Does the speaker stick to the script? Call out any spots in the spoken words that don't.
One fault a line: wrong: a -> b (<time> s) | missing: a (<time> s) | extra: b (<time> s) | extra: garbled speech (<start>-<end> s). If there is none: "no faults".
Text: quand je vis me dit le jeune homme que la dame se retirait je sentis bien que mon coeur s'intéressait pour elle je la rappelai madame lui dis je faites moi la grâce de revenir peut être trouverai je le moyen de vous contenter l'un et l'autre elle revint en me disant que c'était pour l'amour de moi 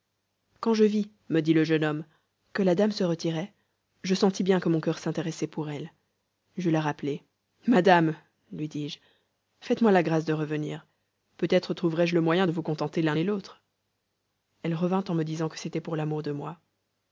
no faults